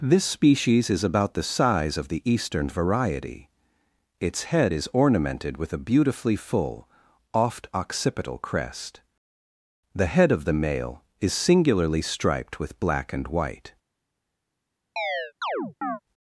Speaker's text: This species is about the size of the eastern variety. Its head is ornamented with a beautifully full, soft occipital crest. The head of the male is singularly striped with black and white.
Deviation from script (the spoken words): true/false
true